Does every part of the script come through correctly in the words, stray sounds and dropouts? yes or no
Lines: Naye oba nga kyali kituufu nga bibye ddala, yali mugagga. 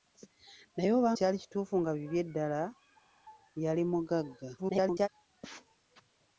no